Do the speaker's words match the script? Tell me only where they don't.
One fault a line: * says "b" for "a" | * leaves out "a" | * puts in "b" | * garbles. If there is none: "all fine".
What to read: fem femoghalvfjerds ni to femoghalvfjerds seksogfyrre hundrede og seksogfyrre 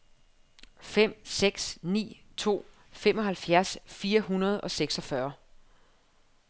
* says "seks" for "femoghalvfjerds"
* says "fire" for "seksogfyrre"